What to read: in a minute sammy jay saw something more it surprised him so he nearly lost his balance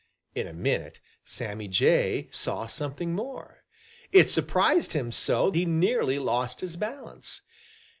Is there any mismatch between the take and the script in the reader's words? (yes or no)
no